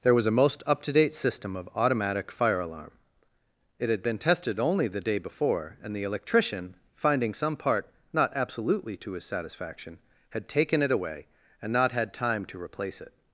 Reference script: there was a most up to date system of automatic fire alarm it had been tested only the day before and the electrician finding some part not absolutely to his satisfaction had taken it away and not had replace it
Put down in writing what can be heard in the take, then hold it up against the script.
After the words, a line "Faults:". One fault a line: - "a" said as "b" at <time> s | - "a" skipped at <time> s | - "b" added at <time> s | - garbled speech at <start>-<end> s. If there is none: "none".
there was a most up to date system of automatic fire alarm it had been tested only the day before and the electrician finding some part not absolutely to his satisfaction had taken it away and not had time to replace it
Faults:
- "time to" added at 12.1 s